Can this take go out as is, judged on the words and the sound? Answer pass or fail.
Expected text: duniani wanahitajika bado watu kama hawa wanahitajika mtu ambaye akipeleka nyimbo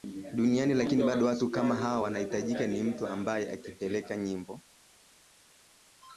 fail